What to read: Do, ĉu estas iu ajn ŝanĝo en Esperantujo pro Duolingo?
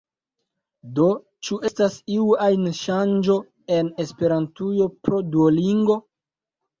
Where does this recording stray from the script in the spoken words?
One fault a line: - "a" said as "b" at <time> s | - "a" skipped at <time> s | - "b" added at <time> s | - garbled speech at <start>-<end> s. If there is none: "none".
none